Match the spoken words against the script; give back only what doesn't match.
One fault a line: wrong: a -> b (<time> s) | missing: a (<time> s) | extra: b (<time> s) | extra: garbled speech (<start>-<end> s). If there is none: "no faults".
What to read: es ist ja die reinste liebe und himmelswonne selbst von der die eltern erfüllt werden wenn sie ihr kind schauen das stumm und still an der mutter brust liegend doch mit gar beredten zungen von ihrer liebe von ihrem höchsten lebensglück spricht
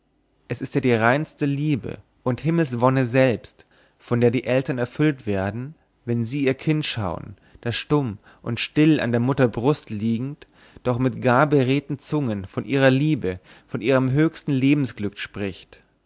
no faults